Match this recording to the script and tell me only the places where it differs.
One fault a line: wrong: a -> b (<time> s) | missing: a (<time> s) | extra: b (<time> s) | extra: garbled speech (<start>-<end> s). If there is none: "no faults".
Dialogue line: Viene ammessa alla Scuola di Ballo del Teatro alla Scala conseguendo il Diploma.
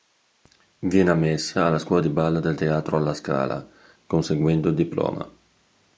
no faults